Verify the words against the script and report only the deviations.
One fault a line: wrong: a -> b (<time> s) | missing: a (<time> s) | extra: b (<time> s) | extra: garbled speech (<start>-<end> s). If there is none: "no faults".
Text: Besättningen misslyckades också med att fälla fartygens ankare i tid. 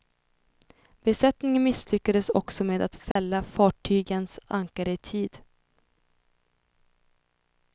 no faults